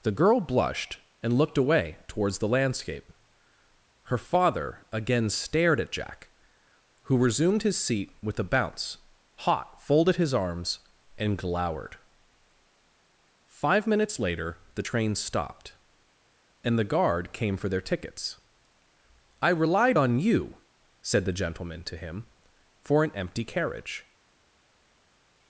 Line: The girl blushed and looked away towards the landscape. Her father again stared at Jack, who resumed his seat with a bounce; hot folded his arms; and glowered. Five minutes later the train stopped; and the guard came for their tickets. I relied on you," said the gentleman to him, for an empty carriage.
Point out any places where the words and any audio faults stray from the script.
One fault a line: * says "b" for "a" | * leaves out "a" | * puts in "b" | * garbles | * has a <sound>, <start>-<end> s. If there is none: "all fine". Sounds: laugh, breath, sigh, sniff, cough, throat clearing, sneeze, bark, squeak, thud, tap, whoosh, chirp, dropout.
all fine